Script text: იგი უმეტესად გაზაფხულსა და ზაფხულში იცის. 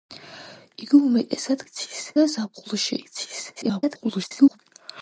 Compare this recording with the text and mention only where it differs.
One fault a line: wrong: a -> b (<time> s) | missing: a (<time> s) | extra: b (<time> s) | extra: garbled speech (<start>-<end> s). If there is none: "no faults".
wrong: გაზაფხულსა -> იცის (1.7 s)
extra: garbled speech (3.6-4.6 s)